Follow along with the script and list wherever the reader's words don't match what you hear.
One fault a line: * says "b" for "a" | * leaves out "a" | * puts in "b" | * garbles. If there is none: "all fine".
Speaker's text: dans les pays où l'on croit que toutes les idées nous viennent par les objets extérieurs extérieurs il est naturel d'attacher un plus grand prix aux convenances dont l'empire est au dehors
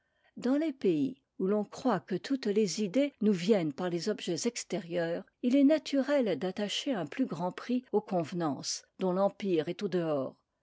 * leaves out "extérieurs"